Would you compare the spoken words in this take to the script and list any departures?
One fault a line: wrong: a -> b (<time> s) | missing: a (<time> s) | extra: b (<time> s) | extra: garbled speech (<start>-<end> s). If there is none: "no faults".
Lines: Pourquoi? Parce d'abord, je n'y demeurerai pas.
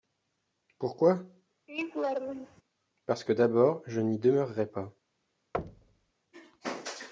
extra: que (3.2 s)